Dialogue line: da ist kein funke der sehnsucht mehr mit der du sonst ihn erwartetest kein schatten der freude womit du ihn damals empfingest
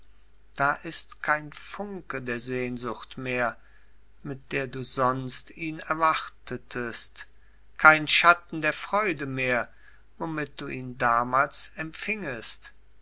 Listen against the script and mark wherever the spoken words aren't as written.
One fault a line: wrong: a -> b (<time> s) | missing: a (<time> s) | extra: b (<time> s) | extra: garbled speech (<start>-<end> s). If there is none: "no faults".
extra: mehr (9.3 s)